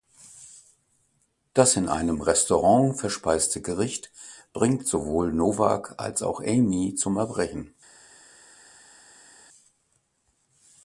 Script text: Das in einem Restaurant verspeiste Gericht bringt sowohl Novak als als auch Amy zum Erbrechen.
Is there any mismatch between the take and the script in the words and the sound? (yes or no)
yes